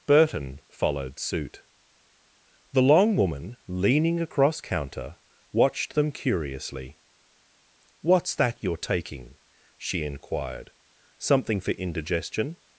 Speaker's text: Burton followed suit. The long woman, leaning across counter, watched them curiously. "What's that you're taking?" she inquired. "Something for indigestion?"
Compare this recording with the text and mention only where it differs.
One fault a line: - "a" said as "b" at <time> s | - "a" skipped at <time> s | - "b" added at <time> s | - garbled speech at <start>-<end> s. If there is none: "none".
none